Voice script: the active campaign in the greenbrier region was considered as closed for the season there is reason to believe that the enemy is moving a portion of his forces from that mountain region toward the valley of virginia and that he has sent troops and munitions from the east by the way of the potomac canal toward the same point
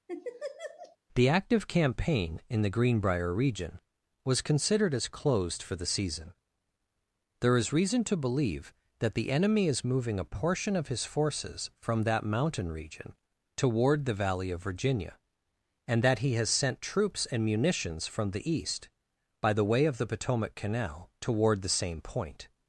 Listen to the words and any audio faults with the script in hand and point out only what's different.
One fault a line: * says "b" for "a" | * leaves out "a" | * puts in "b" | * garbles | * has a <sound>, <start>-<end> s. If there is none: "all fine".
* has a laugh, 0.1-1.0 s